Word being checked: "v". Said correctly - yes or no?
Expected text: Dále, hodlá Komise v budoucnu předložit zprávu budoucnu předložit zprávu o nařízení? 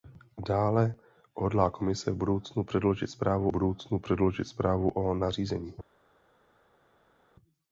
yes